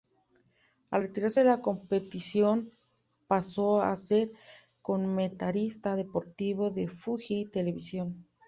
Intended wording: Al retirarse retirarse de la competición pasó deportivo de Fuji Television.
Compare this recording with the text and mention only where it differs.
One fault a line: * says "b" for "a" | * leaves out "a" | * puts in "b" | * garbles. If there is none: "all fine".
* leaves out "retirarse"
* puts in "a ser comentarista"